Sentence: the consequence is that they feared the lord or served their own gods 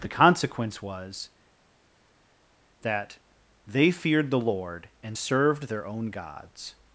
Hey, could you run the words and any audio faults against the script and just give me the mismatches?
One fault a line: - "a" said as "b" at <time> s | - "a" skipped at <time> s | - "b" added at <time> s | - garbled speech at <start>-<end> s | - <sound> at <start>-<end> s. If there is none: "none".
- "is" said as "was" at 0.8 s
- "or" said as "and" at 5.0 s